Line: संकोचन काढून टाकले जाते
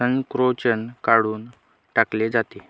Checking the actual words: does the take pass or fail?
pass